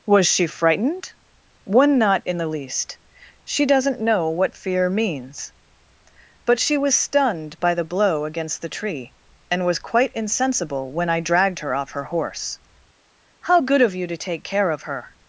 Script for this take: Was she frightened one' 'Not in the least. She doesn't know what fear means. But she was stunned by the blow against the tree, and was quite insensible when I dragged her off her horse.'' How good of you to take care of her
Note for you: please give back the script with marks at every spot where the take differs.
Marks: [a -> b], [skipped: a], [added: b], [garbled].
Was she frightened one' 'Not in the least. She doesn't know what fear means. But she was stunned by the blow against the tree, and was quite insensible when I dragged her off her horse.'' How good of you to take care of her